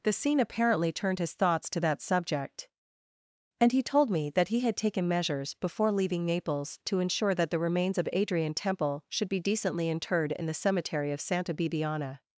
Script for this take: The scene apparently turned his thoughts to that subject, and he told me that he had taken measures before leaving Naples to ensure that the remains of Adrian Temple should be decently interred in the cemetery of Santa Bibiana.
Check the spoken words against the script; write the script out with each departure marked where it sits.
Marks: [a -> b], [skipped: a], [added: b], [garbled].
The scene apparently turned his thoughts to that subject, and he told me that he had taken measures before leaving Naples to ensure that the remains of Adrian Temple should be decently interred in the cemetery of Santa Bibiana.